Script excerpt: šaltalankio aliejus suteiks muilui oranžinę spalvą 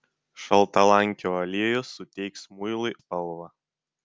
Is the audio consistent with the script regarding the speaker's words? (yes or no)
no